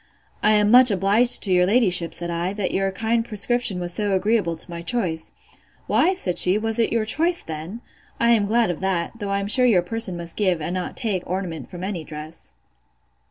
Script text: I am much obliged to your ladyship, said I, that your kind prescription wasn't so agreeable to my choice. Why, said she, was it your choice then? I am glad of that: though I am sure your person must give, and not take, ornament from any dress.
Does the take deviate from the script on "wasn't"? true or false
true